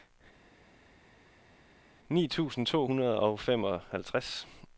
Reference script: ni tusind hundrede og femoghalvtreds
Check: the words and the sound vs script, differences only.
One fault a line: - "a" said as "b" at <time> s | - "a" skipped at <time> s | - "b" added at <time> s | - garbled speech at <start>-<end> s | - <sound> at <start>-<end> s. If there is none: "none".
- "to" added at 2.6 s